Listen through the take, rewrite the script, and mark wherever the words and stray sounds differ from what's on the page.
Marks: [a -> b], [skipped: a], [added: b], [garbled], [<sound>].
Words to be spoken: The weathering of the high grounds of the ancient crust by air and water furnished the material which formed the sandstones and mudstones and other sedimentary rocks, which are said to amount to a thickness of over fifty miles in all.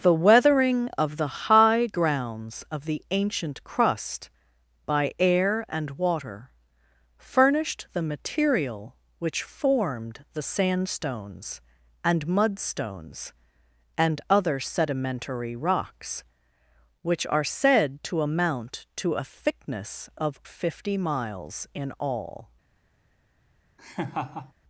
The weathering of the high grounds of the ancient crust by air and water furnished the material which formed the sandstones and mudstones and other sedimentary rocks, which are said to amount to a thickness of [skipped: over] fifty miles in all. [laugh]